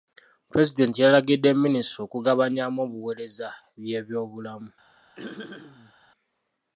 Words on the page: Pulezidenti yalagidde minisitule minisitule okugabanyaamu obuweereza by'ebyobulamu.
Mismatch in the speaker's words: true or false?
true